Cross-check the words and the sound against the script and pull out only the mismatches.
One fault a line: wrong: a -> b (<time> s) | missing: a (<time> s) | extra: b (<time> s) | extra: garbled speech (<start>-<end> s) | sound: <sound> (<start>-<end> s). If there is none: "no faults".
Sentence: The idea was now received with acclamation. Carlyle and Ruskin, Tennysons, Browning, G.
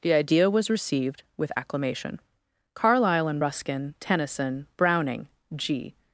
missing: now (0.7 s)
wrong: Tennysons -> Tennyson (4.0 s)